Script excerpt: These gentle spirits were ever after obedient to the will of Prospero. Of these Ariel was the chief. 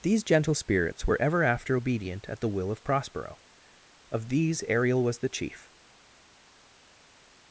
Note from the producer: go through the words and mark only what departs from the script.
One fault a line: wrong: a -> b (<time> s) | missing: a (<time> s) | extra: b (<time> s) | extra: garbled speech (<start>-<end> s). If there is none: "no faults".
wrong: to -> at (2.3 s)